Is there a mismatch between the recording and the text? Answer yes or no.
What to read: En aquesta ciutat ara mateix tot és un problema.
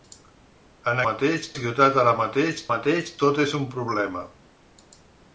yes